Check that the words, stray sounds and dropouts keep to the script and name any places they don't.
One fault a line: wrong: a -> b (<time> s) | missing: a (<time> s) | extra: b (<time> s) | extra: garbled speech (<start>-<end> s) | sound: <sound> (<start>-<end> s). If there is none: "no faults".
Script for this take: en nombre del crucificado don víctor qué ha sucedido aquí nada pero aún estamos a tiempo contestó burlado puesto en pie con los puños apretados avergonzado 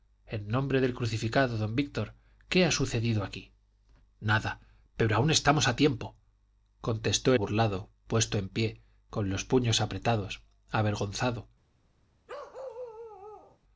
sound: bark (12.3-13.6 s)